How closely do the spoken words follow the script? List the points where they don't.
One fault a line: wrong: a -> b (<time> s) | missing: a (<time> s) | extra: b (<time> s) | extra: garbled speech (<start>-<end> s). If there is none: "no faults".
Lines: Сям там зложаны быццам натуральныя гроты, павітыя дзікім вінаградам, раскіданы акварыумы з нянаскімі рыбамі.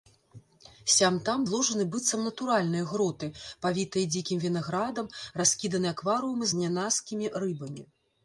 no faults